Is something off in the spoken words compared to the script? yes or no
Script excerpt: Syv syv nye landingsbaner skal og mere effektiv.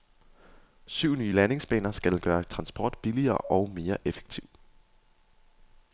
yes